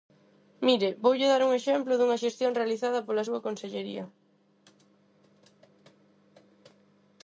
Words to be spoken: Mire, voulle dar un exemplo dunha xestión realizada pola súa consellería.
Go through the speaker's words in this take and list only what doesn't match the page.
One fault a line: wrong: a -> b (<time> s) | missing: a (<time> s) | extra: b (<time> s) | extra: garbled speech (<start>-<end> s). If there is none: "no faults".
no faults